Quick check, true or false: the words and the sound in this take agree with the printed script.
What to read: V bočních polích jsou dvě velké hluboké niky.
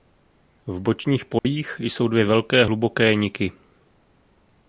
false